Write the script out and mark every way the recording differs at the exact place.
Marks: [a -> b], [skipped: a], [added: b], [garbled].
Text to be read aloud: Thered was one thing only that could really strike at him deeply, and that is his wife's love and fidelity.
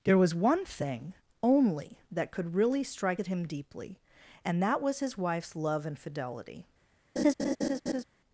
[Thered -> There] was one thing only that could really strike at him deeply, and that [is -> was] his wife's love and fidelity.